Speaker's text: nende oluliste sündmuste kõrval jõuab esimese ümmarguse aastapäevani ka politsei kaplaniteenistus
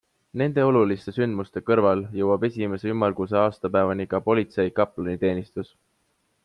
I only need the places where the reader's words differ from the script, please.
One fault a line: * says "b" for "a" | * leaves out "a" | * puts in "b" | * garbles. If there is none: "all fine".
all fine